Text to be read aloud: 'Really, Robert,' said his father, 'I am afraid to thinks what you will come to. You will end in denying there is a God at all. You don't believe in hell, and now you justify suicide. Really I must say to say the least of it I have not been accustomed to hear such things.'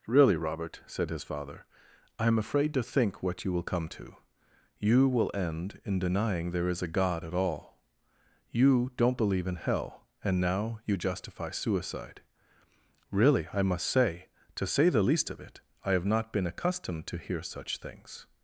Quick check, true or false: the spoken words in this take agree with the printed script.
false